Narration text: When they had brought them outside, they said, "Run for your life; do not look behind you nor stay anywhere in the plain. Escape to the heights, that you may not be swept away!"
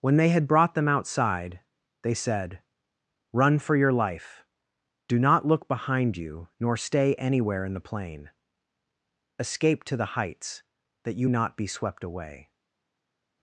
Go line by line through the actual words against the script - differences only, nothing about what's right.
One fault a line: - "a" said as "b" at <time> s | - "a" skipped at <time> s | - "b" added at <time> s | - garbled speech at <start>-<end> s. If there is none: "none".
- "may" skipped at 11.3 s